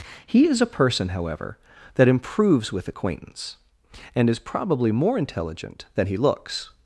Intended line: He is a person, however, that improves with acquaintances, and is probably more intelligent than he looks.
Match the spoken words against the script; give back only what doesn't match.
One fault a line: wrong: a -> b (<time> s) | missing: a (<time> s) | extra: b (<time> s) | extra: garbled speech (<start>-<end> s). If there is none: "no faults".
wrong: acquaintances -> acquaintance (2.9 s)